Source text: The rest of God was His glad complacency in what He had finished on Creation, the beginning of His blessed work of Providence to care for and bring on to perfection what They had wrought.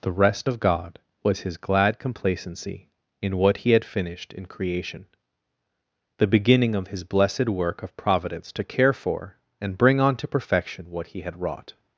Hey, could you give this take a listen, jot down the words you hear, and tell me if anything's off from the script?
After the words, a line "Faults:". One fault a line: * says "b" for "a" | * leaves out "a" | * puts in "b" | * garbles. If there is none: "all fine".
The rest of God was His glad complacency in what He had finished in Creation, the beginning of His blessed work of Providence to care for and bring on to perfection what He had wrought.
Faults:
* says "in" for "on"
* says "He" for "They"